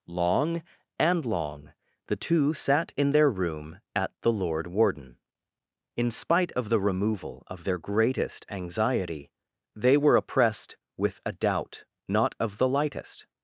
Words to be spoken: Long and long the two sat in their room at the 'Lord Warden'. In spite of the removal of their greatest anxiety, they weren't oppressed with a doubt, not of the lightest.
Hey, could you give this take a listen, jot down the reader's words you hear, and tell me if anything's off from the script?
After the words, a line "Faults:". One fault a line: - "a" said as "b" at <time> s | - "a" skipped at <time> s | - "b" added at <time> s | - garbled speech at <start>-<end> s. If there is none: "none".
Long and long the two sat in their room at the 'Lord Warden'. In spite of the removal of their greatest anxiety, they were oppressed with a doubt, not of the lightest.
Faults:
- "weren't" said as "were" at 10.0 s